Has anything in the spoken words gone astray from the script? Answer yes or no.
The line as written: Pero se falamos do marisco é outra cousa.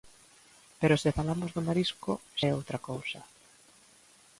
no